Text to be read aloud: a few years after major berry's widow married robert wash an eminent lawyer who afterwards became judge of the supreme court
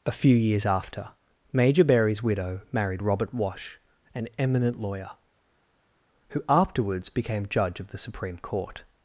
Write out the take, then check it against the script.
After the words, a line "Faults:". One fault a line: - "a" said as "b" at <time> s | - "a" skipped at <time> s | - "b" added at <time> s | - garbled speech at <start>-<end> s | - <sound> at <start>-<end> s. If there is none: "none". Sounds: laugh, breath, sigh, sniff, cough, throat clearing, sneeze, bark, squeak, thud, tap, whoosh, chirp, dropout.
a few years after major berry's widow married robert wash an eminent lawyer who afterwards became judge of the supreme court
Faults:
none